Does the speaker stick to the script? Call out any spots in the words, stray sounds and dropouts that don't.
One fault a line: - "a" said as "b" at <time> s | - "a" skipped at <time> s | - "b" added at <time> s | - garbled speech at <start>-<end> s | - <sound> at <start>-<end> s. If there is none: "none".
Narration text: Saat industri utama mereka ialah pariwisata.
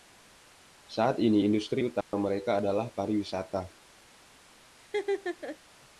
- "ini" added at 1.2 s
- dropout at 2.0-2.1 s
- "ialah" said as "adalah" at 2.6 s
- laugh at 4.8-5.6 s